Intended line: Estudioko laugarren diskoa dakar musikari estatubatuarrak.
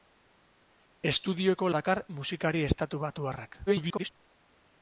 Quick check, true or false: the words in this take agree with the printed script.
false